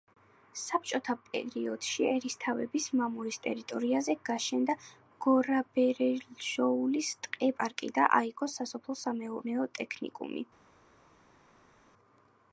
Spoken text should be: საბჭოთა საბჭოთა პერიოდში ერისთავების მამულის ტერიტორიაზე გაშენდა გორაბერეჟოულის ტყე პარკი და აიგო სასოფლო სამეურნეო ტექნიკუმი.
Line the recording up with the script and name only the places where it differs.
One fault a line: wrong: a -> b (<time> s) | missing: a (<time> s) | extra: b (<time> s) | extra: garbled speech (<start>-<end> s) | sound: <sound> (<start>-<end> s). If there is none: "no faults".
missing: საბჭოთა (1.1 s)